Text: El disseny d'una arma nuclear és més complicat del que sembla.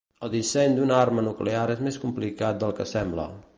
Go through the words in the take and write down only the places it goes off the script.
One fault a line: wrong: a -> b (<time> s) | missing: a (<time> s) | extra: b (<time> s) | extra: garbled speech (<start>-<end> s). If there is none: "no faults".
no faults